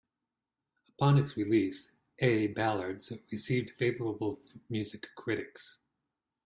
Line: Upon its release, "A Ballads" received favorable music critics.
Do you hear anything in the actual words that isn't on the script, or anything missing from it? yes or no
no